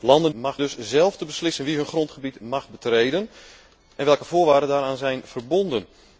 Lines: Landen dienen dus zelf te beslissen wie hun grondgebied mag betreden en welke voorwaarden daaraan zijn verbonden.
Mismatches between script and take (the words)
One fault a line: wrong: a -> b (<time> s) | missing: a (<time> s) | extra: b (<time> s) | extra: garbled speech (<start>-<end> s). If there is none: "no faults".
wrong: dienen -> mag (0.3 s)